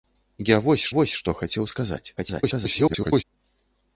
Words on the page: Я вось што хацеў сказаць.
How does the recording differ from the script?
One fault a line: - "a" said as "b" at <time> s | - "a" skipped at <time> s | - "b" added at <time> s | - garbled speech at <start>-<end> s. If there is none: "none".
- "вось" added at 1.0 s
- garbled speech at 2.2-3.2 s